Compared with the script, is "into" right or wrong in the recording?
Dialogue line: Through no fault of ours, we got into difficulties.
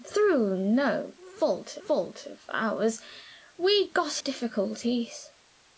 wrong